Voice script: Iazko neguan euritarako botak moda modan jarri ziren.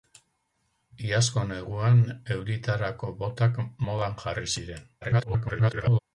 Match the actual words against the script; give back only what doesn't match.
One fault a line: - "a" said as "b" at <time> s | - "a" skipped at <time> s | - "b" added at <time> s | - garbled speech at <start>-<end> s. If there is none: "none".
- "moda" skipped at 3.6 s
- garbled speech at 5.0-6.0 s